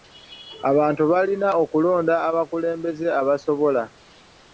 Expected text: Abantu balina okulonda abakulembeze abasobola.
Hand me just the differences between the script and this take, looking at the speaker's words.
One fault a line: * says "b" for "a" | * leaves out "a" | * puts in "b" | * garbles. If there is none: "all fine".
all fine